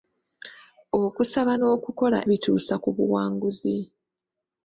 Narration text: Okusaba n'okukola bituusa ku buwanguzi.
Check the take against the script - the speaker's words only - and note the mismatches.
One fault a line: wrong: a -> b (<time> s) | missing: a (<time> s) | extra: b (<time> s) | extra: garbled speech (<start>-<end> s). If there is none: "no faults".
no faults